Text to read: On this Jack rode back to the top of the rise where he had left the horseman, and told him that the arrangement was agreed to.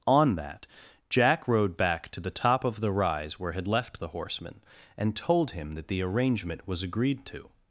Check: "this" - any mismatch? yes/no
yes